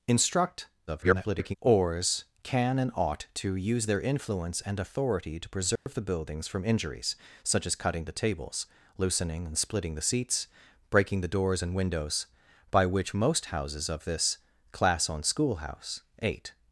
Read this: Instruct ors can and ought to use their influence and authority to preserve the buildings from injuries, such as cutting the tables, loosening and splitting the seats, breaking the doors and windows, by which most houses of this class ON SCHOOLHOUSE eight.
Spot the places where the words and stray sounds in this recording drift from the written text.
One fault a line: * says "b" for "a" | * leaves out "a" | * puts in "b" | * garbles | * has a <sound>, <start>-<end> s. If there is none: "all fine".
* garbles
* has a dropout, 5.8-5.9 s